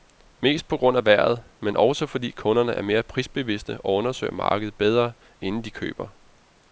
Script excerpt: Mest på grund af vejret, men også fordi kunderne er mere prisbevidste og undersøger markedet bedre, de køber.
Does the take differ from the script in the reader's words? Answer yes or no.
yes